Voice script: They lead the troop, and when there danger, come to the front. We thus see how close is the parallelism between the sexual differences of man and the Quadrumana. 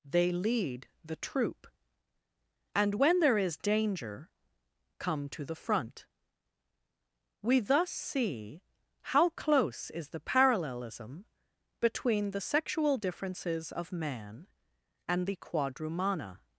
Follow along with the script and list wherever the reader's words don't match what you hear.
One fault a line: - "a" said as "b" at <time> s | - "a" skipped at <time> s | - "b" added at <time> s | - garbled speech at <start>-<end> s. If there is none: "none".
- "is" added at 3.4 s